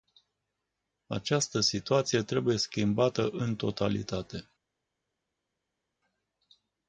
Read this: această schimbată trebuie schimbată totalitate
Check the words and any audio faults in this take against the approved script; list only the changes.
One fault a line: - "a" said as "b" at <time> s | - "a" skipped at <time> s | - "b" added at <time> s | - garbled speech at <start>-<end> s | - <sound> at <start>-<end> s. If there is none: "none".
- "schimbată" said as "situație" at 1.6 s
- "în" added at 3.3 s